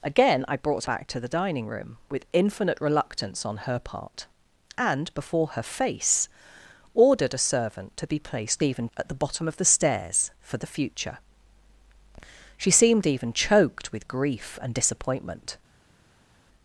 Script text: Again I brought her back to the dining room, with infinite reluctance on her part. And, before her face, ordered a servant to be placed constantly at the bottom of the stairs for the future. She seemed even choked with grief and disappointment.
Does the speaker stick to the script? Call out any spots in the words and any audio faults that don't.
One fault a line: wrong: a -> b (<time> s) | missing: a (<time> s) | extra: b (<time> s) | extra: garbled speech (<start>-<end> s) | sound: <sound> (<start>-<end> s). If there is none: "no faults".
missing: her (0.8 s)
wrong: constantly -> even (8.6 s)